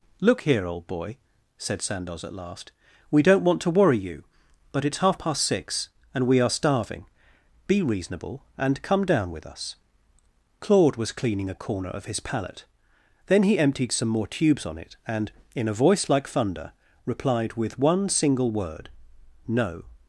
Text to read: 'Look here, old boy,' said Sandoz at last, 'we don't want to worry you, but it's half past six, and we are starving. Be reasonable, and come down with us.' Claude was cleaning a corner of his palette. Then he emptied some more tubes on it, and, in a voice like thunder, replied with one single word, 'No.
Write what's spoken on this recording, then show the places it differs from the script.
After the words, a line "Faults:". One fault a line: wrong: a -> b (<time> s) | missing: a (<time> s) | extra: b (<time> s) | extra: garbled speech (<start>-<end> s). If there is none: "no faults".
'Look here, old boy,' said Sandoz at last, 'we don't want to worry you, but it's half past six, and we are starving. Be reasonable, and come down with us.' Claude was cleaning a corner of his palette. Then he emptied some more tubes on it, and, in a voice like thunder, replied with one single word, 'No.
Faults:
no faults